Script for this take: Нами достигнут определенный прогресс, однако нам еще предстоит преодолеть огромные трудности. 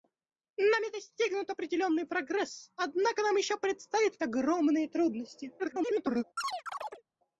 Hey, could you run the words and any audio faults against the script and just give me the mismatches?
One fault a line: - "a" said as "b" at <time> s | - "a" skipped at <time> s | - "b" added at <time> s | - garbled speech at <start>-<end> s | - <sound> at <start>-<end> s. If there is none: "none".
- "преодолеть" skipped at 4.2 s
- garbled speech at 5.6-6.2 s
- chirp at 6.4-7.0 s